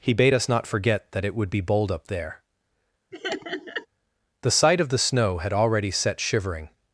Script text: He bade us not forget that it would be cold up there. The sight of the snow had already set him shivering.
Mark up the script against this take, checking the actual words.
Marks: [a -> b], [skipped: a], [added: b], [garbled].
He bade us not forget that it would be [cold -> bold] up there. The sight of the snow had already set [skipped: him] shivering.